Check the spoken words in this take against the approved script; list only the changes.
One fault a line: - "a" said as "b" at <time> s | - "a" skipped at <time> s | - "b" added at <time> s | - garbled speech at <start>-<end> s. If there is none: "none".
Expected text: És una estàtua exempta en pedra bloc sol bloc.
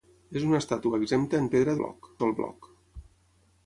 none